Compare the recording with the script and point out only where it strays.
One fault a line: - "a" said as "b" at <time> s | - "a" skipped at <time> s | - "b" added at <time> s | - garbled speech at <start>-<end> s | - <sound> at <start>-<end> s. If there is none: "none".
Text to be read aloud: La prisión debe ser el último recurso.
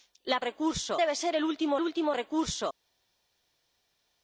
- "prisión" said as "recurso" at 0.4 s
- "último" added at 1.8 s